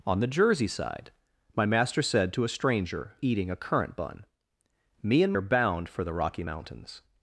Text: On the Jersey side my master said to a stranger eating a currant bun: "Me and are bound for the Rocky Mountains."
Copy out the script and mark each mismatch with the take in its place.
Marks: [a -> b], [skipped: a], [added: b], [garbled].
On the Jersey side my master said to a stranger eating a currant bun: "Me and are bound for the Rocky Mountains."